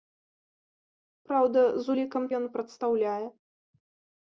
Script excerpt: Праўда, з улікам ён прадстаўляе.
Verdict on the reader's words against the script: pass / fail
pass